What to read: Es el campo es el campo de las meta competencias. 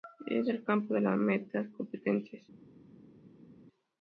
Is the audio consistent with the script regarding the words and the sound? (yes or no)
no